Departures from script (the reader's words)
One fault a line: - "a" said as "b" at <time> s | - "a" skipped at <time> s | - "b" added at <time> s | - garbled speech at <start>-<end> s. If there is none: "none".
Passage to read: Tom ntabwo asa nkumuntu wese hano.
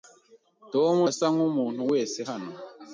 - "ntabwo" skipped at 0.9 s